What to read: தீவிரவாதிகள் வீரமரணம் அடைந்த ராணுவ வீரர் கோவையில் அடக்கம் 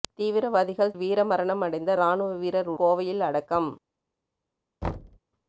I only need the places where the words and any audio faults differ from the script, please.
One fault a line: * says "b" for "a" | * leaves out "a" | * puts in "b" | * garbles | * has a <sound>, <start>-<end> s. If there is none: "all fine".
* has a thud, 4.8-5.2 s